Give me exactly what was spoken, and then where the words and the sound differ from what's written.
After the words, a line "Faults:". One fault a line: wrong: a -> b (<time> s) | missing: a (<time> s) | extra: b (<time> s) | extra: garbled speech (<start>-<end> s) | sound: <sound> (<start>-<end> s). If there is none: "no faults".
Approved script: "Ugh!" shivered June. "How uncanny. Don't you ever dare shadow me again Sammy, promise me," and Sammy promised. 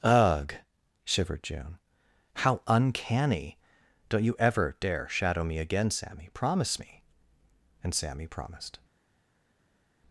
"Ugh!" shivered June. "How uncanny. Don't you ever dare shadow me again Sammy, promise me," and Sammy promised.
Faults:
no faults